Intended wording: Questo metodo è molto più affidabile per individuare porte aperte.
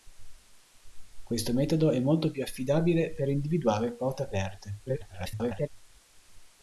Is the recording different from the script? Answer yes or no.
yes